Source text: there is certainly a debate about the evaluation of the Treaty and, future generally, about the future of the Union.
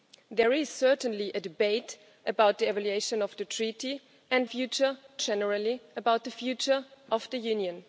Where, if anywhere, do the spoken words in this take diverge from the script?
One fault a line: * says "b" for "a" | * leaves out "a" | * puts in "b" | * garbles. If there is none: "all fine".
all fine